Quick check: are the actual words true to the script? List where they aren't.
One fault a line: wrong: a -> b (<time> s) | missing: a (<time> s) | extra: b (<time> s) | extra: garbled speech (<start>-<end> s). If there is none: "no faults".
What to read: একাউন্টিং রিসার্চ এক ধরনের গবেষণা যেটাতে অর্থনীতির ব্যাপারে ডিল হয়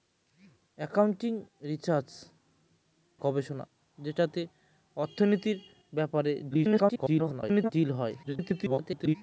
missing: এক ধরনের (2.1 s)
extra: garbled speech (6.5-7.7 s)
extra: garbled speech (8.2-9.2 s)